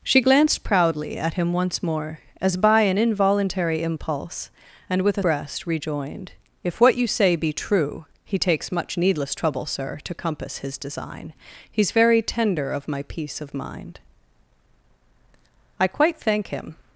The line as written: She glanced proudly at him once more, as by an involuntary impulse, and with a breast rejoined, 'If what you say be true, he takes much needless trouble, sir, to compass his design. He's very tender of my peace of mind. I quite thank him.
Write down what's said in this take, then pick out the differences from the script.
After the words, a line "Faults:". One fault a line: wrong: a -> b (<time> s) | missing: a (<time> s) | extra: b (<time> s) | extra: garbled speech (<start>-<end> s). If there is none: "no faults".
She glanced proudly at him once more, as by an involuntary impulse, and with a breast rejoined, 'If what you say be true, he takes much needless trouble, sir, to compass his design. He's very tender of my peace of mind. I quite thank him.
Faults:
no faults